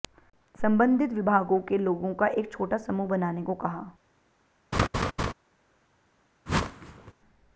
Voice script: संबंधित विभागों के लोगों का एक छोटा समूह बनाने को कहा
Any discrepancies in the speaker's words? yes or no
no